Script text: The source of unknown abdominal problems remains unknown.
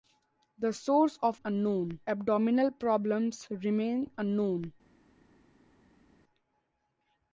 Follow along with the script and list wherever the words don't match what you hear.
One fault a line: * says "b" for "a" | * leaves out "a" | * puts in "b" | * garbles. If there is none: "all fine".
all fine